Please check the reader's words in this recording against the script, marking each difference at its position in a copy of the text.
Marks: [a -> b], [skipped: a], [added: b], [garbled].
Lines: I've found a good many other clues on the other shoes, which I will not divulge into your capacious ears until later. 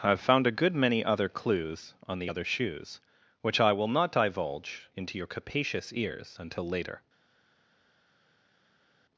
I've found a good many other clues on the other shoes, which I will not divulge into your capacious ears until later.